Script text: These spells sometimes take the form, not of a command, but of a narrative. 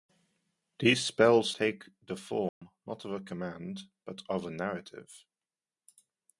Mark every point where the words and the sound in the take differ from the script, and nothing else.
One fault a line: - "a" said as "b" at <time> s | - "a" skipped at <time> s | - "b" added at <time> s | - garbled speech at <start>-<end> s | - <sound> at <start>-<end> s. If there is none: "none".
- "sometimes" skipped at 1.5 s
- dropout at 2.5-2.6 s